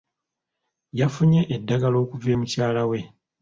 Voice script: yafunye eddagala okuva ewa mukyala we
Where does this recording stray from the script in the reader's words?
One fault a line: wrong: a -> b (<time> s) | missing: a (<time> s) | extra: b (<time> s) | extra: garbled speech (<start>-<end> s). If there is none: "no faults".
missing: ewa (2.3 s)